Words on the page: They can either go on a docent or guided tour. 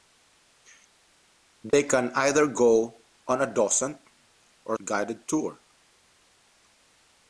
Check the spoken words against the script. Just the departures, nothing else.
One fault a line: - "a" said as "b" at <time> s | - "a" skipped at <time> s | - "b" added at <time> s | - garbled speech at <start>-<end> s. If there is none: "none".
none